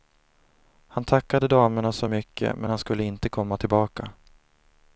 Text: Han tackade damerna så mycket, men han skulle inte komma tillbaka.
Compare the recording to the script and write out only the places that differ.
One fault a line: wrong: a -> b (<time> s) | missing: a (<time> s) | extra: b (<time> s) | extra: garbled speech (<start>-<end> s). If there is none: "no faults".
no faults